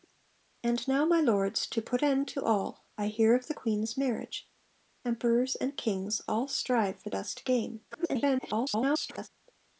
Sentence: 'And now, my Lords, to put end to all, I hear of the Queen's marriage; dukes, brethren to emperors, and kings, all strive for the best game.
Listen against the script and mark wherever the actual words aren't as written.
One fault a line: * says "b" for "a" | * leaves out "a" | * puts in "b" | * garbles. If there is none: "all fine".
* leaves out "dukes brethren to"
* leaves out "the"
* garbles